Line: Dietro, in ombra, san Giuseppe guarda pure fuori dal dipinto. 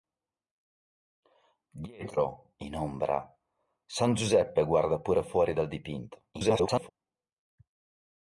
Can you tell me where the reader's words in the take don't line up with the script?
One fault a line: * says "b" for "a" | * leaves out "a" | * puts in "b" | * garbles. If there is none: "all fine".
* garbles